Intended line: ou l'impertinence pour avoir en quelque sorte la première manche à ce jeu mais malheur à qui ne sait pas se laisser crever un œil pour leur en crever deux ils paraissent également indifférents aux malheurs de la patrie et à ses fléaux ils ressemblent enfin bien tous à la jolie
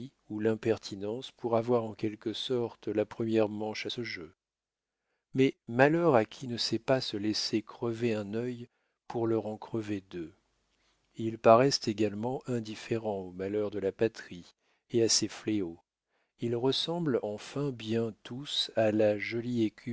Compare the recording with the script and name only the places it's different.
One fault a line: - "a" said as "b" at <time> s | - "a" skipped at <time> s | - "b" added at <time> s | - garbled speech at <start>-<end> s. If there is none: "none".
none